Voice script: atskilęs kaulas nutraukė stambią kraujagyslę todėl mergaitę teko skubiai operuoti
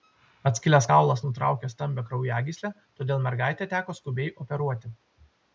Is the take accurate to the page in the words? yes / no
yes